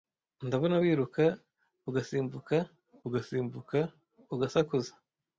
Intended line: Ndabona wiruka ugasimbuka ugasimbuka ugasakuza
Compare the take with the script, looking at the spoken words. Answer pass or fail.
pass